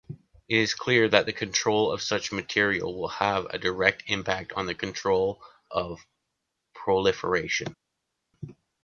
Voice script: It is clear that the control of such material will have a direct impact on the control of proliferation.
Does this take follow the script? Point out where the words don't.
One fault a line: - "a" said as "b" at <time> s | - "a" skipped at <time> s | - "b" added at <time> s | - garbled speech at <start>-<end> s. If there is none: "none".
none